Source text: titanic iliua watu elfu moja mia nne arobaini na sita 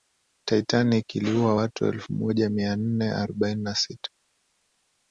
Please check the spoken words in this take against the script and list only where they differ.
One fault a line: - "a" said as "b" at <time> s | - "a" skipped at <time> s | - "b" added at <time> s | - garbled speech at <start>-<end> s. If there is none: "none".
none